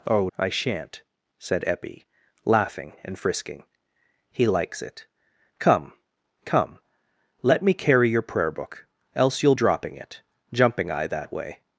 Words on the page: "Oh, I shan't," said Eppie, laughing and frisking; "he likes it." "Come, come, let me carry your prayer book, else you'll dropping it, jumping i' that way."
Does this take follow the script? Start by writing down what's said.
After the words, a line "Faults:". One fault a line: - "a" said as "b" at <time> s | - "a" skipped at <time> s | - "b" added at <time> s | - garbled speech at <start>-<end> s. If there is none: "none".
"Oh, I shan't," said Eppie, laughing and frisking; "he likes it." "Come, come, let me carry your prayer book, else you'll dropping it, jumping i' that way."
Faults:
none